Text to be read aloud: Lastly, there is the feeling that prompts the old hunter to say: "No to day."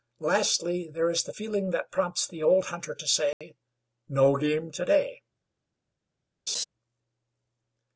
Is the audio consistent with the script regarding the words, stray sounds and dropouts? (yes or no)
no